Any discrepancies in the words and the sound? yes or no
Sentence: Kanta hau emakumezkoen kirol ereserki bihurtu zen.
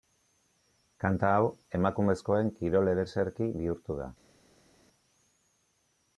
yes